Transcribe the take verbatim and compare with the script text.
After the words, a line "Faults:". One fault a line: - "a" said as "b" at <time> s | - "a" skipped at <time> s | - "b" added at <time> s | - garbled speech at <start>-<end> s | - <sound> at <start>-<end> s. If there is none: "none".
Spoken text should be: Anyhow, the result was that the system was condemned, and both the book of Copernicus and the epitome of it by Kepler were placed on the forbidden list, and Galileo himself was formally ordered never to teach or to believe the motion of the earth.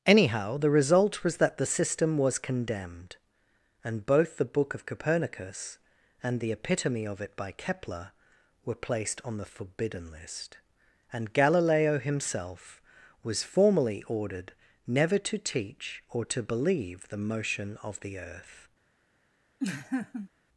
Anyhow, the result was that the system was condemned, and both the book of Copernicus and the epitome of it by Kepler were placed on the forbidden list, and Galileo himself was formally ordered never to teach or to believe the motion of the earth.
Faults:
- laugh at 19.6-20.3 s